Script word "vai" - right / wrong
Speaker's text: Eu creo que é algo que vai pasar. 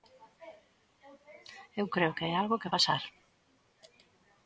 wrong